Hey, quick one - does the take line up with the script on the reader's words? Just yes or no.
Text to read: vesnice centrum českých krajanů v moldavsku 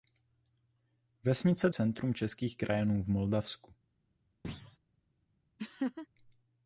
yes